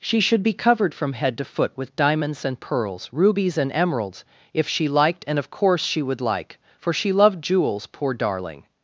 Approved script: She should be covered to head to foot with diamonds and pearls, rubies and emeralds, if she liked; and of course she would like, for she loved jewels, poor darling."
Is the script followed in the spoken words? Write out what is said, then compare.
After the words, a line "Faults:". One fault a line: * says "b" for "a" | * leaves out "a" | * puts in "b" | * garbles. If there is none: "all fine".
She should be covered from head to foot with diamonds and pearls, rubies and emeralds, if she liked; and of course she would like, for she loved jewels, poor darling."
Faults:
* says "from" for "to"